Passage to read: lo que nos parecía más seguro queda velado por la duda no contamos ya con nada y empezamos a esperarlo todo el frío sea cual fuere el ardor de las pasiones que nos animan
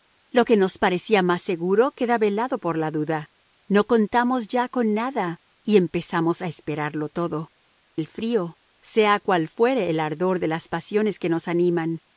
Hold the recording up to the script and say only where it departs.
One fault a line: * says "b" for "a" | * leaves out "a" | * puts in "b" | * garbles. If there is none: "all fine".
all fine